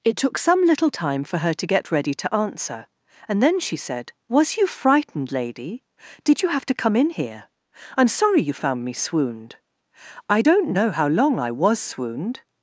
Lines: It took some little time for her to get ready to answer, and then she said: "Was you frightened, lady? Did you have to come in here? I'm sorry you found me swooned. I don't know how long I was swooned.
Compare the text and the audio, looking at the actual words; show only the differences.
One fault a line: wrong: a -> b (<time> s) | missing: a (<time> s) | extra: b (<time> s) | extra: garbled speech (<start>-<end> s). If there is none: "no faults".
no faults